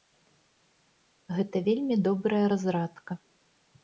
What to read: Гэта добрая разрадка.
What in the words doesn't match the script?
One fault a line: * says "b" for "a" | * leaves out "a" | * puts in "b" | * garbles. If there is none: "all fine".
* puts in "вельмі"